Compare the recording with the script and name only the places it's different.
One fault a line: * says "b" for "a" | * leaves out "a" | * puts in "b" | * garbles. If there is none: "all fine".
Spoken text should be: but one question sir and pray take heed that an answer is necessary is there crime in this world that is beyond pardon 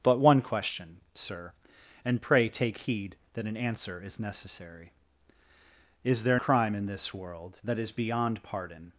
all fine